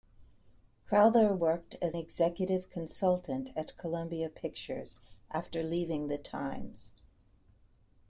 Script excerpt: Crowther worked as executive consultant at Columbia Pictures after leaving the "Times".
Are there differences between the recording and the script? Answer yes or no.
no